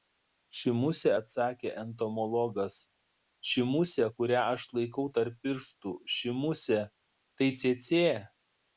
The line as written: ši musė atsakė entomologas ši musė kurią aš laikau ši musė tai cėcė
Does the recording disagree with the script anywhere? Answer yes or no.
yes